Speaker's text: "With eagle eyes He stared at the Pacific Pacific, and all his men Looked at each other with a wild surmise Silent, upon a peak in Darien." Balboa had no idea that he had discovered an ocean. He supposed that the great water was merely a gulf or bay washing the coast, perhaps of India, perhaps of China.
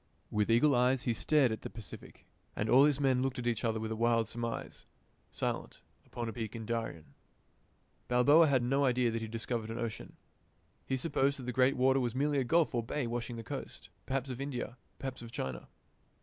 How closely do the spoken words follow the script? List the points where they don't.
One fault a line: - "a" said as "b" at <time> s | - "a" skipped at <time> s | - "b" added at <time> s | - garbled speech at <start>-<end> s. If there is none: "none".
- "Pacific" skipped at 2.2 s